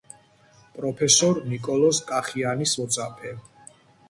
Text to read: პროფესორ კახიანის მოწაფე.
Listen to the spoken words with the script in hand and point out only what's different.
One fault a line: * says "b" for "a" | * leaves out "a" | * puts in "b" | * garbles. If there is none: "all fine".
* puts in "ნიკოლოზ"